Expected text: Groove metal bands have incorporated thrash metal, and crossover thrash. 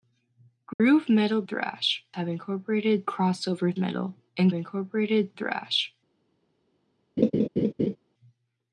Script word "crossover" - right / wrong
wrong